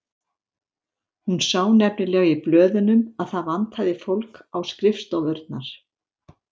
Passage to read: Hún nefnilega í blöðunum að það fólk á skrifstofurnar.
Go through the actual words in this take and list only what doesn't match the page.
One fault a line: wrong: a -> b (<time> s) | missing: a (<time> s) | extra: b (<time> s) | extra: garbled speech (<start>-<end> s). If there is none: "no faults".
extra: sá (1.5 s)
extra: vantaði (3.5 s)